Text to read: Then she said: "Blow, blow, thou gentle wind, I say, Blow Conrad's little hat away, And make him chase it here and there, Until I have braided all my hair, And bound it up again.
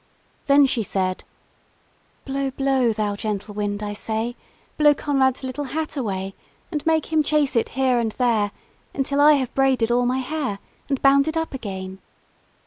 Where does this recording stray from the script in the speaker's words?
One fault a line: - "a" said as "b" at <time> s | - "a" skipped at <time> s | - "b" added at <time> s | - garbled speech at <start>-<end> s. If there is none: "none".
none